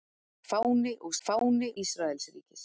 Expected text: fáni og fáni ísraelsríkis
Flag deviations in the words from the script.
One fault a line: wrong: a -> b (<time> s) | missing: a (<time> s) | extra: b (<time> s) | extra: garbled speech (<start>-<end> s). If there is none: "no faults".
no faults